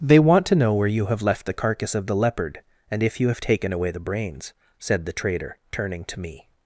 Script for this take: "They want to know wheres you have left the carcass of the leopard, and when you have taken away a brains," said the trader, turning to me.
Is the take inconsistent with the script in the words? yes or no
yes